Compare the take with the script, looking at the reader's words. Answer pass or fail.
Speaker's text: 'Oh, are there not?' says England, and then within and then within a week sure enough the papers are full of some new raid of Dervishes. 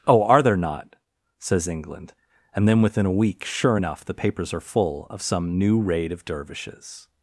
fail